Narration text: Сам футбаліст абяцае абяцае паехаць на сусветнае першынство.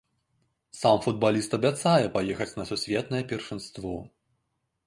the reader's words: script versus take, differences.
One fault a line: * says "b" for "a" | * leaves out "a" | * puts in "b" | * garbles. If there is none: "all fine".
* leaves out "абяцае"